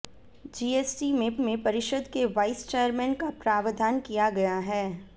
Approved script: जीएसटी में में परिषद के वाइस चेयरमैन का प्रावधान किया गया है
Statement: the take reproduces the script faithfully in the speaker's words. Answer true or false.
true